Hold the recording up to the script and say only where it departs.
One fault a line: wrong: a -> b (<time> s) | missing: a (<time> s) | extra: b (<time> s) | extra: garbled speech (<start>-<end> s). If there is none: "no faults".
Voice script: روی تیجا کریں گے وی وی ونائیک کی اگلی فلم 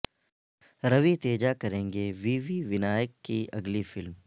no faults